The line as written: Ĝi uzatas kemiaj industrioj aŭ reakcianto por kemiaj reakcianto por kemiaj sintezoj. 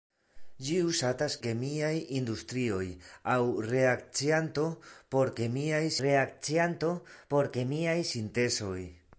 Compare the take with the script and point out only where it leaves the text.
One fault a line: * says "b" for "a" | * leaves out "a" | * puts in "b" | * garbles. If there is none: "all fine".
all fine